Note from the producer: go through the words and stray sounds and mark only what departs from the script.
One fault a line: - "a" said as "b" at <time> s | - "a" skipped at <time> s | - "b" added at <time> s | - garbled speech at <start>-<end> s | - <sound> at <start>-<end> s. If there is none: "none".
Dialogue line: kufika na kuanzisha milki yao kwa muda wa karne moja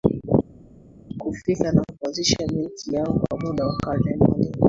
none